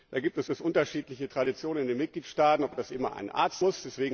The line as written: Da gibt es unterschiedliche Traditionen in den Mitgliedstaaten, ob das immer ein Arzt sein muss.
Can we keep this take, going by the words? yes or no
no